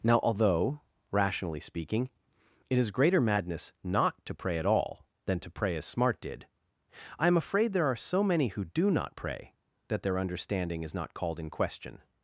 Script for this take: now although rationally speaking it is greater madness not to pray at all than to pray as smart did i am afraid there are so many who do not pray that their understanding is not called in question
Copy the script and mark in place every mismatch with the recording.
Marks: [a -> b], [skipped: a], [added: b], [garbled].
now although rationally speaking it is greater madness not to pray at all than to pray as smart did i am afraid there are so many who do not pray that their understanding is not called in question